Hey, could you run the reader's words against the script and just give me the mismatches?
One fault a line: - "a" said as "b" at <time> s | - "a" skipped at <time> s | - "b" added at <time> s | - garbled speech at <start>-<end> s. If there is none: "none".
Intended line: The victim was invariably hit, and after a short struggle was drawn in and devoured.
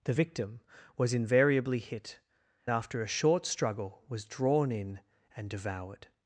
- "and" skipped at 2.2 s